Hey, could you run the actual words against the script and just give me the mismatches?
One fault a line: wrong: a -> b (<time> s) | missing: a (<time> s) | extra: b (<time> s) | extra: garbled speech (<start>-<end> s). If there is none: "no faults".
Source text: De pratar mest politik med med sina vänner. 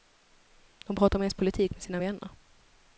missing: med (1.8 s)